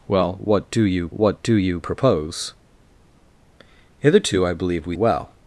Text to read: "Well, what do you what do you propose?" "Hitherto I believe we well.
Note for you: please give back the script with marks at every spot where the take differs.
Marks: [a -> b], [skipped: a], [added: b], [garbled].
"Well, what do you what do you propose?" "Hitherto I believe we well.